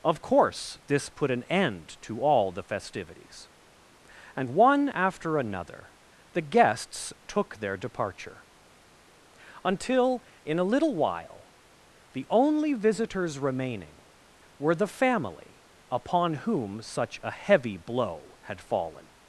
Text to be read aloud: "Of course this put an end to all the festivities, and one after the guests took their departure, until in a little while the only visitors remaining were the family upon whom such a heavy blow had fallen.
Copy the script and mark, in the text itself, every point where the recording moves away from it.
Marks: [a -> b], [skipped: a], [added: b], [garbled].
"Of course this put an end to all the festivities, and one after [added: another] the guests took their departure, until in a little while the only visitors remaining were the family upon whom such a heavy blow had fallen.